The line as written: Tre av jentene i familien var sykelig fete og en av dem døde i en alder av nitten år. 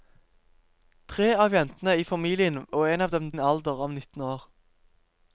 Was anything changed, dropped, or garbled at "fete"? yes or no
yes